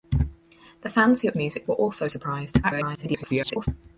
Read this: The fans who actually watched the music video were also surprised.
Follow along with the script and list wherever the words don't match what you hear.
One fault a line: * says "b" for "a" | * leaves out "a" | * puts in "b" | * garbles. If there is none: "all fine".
* leaves out "actually watched"
* leaves out "video"
* garbles